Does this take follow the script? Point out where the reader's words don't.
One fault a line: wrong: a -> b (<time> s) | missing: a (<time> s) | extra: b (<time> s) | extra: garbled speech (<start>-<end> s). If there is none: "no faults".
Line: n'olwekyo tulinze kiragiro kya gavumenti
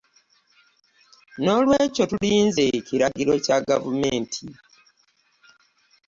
no faults